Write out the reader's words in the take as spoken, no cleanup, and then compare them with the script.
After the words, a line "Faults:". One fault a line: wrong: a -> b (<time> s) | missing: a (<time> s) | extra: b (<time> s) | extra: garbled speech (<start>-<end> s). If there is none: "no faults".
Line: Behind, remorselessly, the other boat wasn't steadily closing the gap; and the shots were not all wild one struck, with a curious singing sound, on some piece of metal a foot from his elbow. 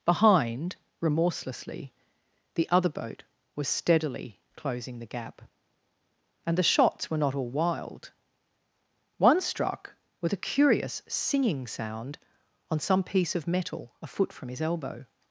Behind, remorselessly, the other boat was steadily closing the gap; and the shots were not all wild one struck, with a curious singing sound, on some piece of metal a foot from his elbow.
Faults:
wrong: wasn't -> was (3.5 s)